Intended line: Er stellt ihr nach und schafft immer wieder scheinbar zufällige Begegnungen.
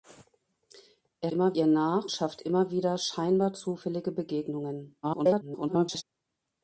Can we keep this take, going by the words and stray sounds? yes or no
no